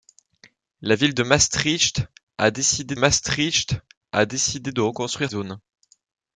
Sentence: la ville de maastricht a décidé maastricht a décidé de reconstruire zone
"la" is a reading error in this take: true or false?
false